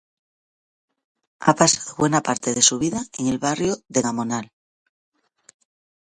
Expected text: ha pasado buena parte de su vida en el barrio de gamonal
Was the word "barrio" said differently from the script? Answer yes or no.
no